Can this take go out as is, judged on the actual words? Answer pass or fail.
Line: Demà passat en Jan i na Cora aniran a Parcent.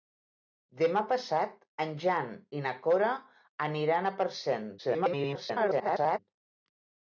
fail